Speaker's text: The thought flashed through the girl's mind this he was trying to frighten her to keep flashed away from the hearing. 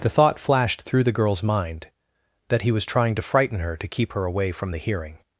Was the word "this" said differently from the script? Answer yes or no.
yes